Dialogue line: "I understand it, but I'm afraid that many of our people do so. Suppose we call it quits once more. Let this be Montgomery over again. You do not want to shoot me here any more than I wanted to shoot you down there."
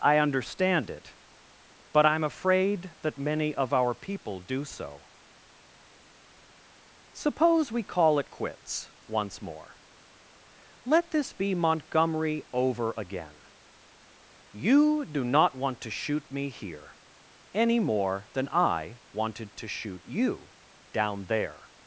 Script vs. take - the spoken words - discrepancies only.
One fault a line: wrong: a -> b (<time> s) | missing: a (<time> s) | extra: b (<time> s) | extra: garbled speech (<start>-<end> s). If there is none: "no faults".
no faults